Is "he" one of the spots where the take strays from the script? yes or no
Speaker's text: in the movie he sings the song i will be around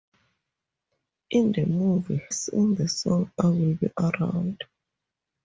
yes